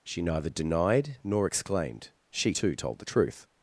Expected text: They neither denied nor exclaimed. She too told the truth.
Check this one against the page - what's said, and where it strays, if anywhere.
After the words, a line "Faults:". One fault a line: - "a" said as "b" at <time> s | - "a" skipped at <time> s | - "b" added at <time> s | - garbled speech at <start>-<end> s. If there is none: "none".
She neither denied nor exclaimed. She too told the truth.
Faults:
- "They" said as "She" at 0.0 s